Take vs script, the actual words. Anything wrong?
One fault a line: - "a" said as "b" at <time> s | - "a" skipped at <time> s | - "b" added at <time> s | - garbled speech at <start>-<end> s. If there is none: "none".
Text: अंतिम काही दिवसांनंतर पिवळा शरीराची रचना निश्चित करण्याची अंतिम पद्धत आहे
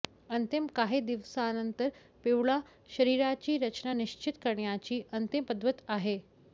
none